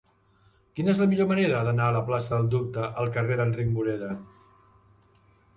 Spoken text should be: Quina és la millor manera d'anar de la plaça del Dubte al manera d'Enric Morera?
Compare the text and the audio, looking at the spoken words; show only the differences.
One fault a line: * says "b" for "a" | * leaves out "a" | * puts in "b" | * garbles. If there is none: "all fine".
* says "carrer" for "manera"